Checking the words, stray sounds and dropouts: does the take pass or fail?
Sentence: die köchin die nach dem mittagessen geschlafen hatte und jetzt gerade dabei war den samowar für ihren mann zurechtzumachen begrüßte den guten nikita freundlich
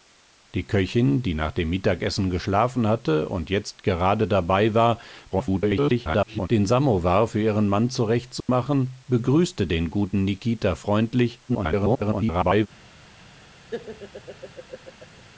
fail